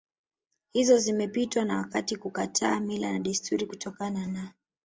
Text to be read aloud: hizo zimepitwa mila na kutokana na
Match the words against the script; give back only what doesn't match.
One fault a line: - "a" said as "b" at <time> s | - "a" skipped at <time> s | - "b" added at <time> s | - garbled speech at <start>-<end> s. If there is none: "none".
- "na wakati kukataa" added at 1.6 s
- "desturi" added at 3.2 s